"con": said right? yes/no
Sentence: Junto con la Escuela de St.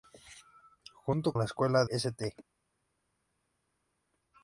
no